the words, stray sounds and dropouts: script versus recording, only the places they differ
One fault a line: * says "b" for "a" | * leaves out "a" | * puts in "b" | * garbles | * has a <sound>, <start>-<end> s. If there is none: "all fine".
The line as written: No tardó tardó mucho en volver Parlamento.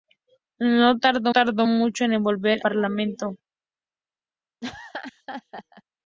* has a laugh, 4.6-5.8 s